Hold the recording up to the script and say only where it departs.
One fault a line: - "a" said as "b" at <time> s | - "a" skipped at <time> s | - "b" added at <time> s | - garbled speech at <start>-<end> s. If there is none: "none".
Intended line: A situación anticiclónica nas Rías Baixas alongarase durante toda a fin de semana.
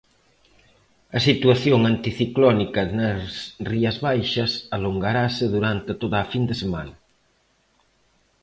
none